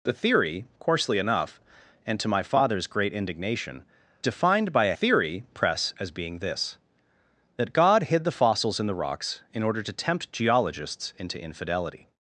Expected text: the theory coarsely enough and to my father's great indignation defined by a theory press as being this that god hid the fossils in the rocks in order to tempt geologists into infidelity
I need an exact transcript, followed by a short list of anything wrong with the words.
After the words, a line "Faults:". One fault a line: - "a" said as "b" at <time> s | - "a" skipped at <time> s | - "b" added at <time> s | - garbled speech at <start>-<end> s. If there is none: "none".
the theory coarsely enough and to my father's great indignation defined by a theory press as being this that god hid the fossils in the rocks in order to tempt geologists into infidelity
Faults:
none